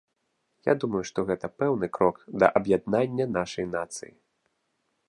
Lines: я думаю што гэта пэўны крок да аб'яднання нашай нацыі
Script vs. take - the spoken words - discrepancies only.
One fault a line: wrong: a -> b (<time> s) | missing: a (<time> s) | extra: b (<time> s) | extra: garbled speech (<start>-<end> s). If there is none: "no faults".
no faults